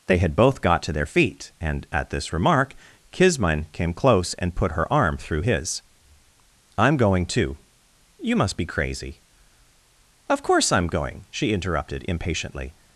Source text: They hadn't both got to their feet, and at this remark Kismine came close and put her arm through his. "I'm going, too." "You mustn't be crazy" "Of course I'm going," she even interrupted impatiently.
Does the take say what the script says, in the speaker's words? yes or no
no